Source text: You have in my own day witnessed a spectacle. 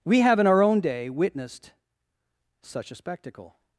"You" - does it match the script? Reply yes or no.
no